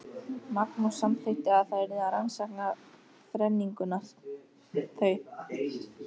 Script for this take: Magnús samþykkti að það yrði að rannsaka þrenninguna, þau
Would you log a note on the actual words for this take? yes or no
no